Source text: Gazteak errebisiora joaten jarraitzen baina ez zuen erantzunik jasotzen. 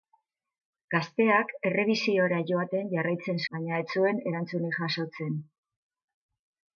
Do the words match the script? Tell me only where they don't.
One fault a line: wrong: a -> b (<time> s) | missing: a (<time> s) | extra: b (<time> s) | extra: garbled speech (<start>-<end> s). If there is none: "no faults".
no faults